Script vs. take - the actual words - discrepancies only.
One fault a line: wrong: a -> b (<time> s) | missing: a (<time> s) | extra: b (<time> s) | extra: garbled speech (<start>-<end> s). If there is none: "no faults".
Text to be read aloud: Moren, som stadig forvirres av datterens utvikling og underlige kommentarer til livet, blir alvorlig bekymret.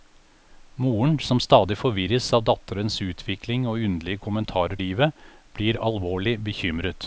missing: til (4.8 s)